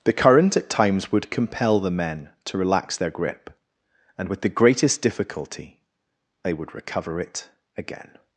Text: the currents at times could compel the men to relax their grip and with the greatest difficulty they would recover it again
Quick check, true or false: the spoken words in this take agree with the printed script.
false